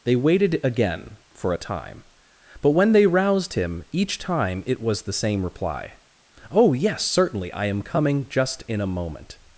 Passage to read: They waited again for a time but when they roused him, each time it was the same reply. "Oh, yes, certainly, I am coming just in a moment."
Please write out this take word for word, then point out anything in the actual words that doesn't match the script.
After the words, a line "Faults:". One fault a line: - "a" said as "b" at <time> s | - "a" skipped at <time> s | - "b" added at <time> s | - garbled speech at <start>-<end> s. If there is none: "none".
They waited again for a time but when they roused him, each time it was the same reply. "Oh, yes, certainly, I am coming just in a moment."
Faults:
none